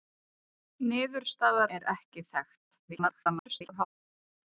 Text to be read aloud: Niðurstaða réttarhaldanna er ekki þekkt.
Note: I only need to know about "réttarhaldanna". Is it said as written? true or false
false